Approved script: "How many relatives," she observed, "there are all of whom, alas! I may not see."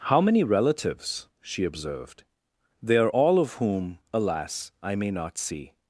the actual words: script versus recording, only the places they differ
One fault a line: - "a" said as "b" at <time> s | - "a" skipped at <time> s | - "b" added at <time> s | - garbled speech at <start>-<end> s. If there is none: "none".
- "there" said as "they" at 2.8 s